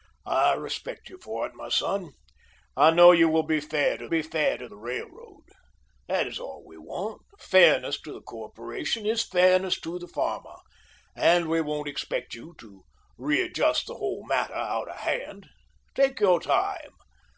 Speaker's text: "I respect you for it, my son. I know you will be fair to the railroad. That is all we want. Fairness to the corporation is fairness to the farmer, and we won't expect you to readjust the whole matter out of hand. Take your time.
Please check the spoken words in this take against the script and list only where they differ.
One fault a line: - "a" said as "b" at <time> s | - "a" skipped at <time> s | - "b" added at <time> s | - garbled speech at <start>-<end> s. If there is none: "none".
- "be fair to" added at 4.1 s